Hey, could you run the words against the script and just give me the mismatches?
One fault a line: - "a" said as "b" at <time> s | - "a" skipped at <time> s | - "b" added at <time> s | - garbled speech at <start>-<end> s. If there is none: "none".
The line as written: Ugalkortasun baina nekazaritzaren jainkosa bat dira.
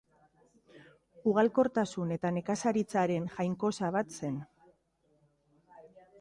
- "baina" said as "eta" at 2.1 s
- "dira" said as "zen" at 4.2 s